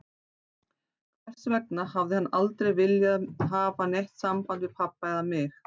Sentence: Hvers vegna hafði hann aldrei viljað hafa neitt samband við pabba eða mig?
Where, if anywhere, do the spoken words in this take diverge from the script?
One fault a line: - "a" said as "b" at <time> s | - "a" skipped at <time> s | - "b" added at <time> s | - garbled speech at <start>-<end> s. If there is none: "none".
none